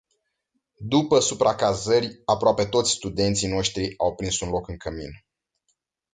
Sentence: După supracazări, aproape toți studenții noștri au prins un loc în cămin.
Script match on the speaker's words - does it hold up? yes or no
yes